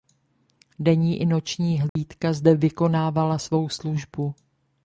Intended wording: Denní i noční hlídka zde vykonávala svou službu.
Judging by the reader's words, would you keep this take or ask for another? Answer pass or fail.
pass